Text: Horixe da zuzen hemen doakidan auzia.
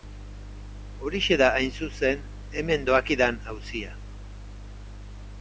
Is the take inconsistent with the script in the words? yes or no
yes